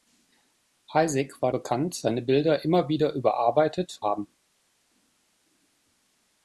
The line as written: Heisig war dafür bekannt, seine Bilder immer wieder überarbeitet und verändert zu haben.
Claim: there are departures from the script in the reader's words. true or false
true